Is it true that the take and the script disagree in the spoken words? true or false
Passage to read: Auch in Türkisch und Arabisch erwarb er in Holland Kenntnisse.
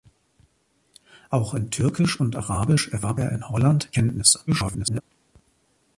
true